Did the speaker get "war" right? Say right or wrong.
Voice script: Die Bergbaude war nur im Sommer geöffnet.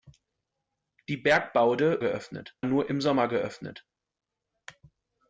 wrong